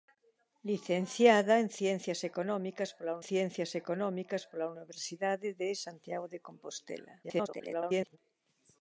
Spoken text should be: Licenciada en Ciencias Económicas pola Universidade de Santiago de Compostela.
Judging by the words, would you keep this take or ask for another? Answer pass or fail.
fail